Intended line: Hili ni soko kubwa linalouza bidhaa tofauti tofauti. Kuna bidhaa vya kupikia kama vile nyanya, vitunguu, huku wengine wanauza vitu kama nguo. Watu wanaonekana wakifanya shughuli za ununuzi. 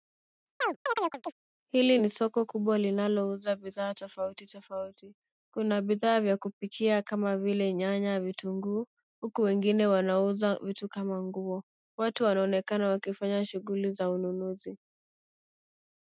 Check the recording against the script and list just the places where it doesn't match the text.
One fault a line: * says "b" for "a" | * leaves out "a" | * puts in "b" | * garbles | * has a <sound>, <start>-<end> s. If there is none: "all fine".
* has a chirp, 0.6-1.3 s